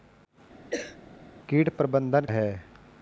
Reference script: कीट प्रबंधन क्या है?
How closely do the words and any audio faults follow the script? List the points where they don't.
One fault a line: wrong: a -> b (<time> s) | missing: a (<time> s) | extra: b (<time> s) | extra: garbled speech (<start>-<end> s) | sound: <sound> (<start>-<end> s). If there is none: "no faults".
sound: cough (0.7-1.0 s)
missing: क्या (2.3 s)